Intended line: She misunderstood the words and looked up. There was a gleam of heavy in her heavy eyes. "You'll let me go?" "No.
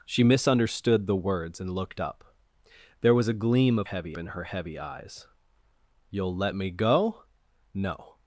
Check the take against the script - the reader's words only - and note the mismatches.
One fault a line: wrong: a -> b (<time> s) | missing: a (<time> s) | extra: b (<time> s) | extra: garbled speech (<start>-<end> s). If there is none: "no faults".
no faults